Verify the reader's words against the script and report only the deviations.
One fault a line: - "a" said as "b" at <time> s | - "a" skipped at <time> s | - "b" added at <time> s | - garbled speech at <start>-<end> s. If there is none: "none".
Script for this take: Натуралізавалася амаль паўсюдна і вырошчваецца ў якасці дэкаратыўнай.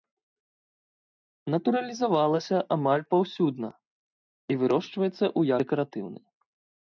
- "якасці" skipped at 5.4 s